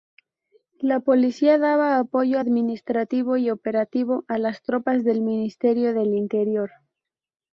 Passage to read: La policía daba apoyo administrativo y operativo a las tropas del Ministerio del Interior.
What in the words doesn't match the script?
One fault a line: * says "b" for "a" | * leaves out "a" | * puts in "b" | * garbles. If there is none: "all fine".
all fine